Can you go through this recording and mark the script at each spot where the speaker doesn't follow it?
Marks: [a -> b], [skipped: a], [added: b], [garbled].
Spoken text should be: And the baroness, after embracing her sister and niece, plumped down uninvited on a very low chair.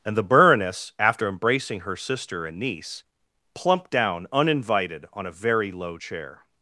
And the baroness, after embracing her sister and niece, plumped down uninvited on a very low chair.